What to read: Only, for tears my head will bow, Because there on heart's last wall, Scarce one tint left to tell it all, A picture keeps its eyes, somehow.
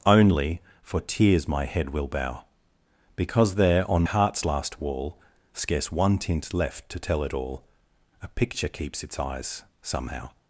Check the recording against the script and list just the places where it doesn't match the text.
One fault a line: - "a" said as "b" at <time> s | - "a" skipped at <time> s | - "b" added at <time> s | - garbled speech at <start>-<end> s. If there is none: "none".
none